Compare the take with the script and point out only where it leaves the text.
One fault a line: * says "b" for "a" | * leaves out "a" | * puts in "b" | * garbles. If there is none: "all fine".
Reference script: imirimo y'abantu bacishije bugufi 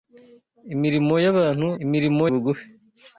* says "imirimo" for "bacishije"